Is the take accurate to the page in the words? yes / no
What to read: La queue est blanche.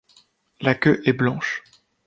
yes